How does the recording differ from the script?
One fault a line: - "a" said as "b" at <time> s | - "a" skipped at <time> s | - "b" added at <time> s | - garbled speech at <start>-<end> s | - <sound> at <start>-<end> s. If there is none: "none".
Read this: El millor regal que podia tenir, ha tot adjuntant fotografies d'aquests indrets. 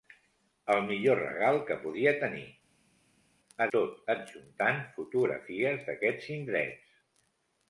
none